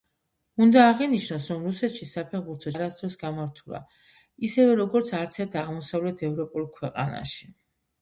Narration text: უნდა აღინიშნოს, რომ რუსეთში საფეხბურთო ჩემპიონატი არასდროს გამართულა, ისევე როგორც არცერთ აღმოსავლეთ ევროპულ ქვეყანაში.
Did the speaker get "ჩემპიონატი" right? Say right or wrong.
wrong